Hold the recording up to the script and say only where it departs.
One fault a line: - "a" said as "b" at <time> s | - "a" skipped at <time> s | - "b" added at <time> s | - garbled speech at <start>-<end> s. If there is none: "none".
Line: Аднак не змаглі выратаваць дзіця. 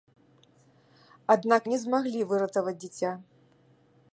none